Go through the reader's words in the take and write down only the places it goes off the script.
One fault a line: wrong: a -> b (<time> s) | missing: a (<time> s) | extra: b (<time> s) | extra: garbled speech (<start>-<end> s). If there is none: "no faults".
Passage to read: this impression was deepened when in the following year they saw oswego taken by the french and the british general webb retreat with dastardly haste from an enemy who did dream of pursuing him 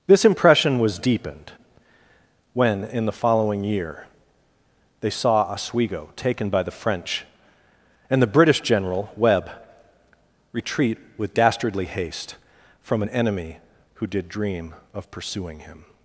no faults